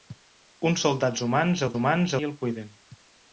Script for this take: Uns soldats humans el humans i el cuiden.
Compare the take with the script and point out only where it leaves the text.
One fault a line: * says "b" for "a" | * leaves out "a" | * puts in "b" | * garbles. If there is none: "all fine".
all fine